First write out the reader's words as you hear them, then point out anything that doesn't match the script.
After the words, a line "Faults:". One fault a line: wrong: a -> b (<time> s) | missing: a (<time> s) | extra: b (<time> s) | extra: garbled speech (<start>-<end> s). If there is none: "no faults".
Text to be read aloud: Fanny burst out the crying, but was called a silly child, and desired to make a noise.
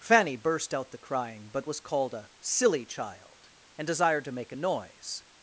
Fanny burst out the crying, but was called a silly child, and desired to make a noise.
Faults:
no faults